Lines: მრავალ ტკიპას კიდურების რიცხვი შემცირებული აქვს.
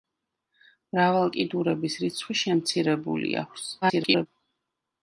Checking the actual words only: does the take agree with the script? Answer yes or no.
no